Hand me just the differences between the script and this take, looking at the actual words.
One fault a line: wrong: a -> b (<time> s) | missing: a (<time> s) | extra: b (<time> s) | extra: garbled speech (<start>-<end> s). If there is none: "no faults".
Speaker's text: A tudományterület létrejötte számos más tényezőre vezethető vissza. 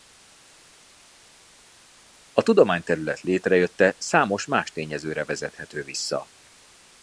no faults